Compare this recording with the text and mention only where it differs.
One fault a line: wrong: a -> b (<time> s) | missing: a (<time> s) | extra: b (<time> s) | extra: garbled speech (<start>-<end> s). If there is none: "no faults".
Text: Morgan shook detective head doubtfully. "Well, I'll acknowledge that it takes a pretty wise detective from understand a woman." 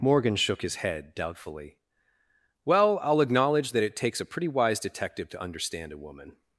wrong: detective -> his (0.6 s)
wrong: from -> to (5.3 s)